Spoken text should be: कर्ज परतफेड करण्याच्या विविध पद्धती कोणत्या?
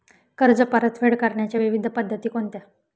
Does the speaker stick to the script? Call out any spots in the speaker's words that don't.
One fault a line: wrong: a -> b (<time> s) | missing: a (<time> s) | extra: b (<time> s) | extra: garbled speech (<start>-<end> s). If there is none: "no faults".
no faults